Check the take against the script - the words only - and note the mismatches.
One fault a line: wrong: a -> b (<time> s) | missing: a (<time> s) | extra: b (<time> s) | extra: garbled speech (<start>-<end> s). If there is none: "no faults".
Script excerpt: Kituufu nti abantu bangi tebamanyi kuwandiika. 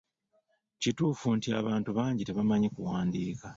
no faults